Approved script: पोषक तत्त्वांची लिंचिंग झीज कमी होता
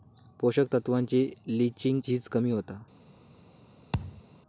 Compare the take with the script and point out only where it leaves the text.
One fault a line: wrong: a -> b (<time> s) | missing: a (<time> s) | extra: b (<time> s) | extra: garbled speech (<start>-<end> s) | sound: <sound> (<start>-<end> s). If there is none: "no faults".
sound: thud (3.9-4.2 s)